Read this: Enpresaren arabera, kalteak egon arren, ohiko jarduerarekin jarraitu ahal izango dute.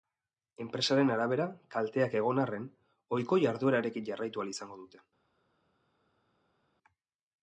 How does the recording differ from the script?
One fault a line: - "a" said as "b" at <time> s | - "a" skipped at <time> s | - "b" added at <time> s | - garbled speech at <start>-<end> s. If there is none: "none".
none